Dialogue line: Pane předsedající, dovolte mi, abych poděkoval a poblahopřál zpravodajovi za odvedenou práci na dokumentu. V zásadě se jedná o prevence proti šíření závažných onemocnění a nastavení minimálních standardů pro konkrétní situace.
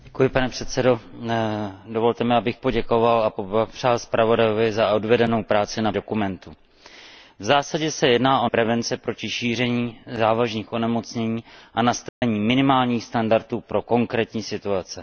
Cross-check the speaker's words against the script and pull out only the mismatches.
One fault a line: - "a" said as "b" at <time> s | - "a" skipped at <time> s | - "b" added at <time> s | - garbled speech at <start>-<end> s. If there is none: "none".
none